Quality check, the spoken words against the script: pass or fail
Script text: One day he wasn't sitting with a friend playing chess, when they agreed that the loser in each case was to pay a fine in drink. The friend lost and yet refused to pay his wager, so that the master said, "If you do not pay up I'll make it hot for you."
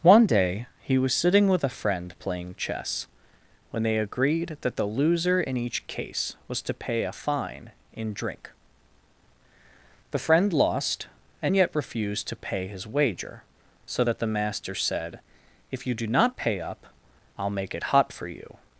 fail